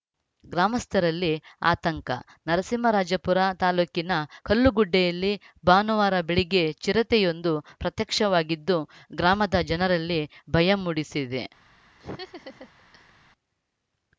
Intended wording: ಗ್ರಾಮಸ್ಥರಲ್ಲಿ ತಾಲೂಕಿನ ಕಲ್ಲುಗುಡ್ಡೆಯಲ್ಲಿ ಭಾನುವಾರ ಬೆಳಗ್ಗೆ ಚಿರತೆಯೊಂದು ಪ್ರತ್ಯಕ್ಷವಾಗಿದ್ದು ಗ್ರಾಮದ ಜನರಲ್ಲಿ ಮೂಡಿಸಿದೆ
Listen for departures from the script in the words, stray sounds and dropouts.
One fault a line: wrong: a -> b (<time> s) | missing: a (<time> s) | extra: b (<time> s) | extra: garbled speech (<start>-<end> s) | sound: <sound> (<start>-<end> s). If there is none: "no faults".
extra: ಆತಂಕ ನರಸಿಂಹರಾಜಪುರ (1.6 s)
extra: ಭಯ (10.5 s)
sound: laugh (12.0-13.1 s)